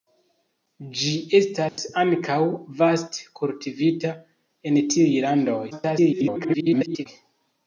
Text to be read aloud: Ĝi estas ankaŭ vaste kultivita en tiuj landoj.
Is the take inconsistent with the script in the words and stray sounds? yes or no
yes